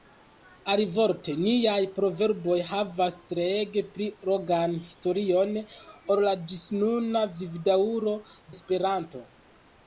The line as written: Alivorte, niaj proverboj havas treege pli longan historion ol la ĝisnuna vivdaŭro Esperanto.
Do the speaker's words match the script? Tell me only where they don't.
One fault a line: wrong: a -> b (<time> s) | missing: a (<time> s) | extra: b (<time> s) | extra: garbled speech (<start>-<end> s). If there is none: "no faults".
no faults